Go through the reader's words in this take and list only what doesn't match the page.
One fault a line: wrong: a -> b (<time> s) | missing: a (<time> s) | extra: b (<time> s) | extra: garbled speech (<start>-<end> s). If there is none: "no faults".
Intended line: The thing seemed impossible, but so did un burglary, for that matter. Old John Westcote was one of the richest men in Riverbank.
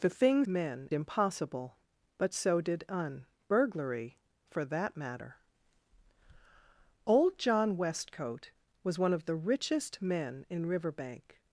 wrong: seemed -> men (0.4 s)